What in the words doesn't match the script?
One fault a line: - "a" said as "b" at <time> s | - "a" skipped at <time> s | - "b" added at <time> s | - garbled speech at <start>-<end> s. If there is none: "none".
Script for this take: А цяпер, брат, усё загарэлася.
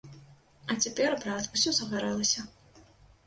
none